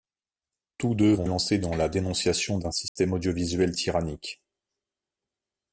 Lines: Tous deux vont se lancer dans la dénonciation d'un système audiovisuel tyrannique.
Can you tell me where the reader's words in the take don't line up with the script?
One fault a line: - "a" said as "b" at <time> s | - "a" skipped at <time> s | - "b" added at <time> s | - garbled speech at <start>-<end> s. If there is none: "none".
- "se" skipped at 1.3 s